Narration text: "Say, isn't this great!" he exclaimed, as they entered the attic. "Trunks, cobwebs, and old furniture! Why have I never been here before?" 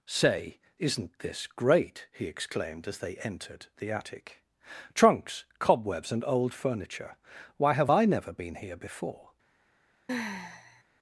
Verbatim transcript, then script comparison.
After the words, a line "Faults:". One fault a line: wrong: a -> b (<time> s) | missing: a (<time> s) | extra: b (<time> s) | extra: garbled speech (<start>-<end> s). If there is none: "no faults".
"Say, isn't this great!" he exclaimed, as they entered the attic. "Trunks, cobwebs, and old furniture! Why have I never been here before?"
Faults:
no faults